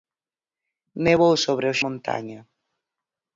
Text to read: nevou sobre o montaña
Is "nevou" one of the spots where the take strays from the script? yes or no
no